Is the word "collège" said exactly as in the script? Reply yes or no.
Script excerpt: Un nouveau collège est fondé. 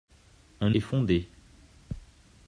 no